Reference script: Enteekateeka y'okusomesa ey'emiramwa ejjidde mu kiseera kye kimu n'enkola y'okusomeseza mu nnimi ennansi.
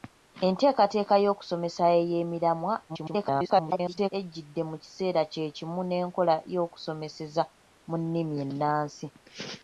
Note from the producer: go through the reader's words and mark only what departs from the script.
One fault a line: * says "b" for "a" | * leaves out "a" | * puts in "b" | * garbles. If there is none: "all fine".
* garbles